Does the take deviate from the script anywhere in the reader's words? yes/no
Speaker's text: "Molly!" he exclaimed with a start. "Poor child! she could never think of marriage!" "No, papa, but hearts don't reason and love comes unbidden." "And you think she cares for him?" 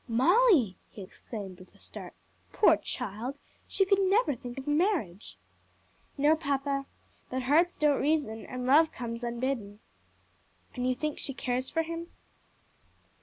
no